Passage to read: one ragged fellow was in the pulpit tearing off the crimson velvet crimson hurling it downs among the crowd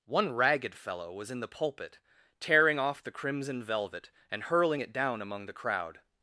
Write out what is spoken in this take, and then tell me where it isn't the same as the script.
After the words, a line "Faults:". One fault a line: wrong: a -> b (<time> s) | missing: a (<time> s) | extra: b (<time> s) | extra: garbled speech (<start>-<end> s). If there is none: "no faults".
one ragged fellow was in the pulpit tearing off the crimson velvet and hurling it down among the crowd
Faults:
wrong: crimson -> and (4.3 s)
wrong: downs -> down (4.9 s)